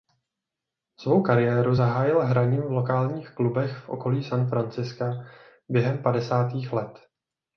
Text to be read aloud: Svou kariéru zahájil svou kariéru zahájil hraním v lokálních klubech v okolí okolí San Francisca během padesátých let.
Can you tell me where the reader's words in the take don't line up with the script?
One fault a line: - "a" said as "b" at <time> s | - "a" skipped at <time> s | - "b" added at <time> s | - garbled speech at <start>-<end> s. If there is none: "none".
- "svou kariéru zahájil" skipped at 2.2 s
- "okolí" skipped at 4.2 s